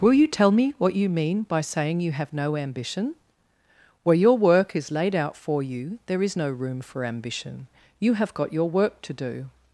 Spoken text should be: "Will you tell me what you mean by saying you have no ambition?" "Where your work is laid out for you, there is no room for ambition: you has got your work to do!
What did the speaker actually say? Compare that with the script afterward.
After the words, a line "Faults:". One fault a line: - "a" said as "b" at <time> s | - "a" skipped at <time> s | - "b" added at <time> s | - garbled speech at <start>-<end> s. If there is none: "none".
"Will you tell me what you mean by saying you have no ambition?" "Where your work is laid out for you, there is no room for ambition: you have got your work to do!
Faults:
- "has" said as "have" at 8.1 s